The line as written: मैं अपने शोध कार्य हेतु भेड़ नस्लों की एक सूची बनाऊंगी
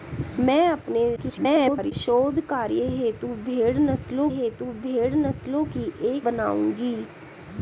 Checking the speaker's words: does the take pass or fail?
fail